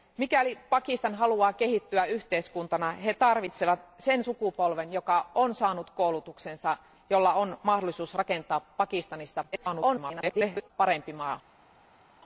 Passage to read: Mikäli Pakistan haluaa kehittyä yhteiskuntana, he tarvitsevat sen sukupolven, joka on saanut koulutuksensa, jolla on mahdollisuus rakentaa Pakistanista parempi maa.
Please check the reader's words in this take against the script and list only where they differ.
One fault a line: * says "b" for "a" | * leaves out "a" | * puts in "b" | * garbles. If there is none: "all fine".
* garbles